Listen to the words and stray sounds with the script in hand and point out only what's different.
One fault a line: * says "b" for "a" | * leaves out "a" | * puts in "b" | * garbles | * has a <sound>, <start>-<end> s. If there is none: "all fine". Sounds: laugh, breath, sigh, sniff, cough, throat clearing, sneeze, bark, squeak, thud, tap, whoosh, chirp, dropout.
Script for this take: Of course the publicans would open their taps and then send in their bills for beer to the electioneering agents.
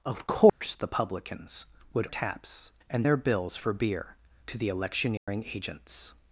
* has a dropout, 0.5-0.6 s
* leaves out "open their"
* leaves out "then send in"
* has a dropout, 5.2-5.3 s